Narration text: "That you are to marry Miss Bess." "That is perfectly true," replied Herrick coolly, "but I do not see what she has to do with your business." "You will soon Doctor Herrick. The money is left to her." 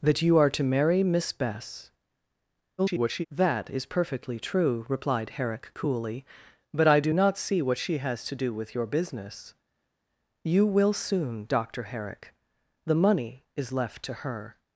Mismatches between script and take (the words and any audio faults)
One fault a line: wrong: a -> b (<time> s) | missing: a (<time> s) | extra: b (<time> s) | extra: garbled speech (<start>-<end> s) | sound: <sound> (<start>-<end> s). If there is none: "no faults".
extra: garbled speech (2.8-3.3 s)